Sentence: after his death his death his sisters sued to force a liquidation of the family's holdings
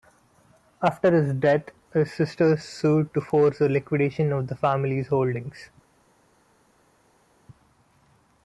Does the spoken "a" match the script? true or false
true